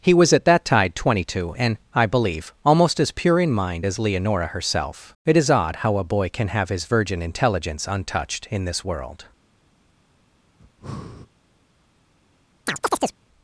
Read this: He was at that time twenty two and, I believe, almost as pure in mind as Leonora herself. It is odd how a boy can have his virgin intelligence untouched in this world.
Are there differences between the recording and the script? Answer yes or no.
yes